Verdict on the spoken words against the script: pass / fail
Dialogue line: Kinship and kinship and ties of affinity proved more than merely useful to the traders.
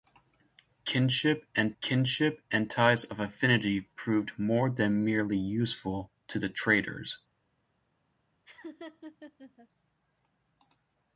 pass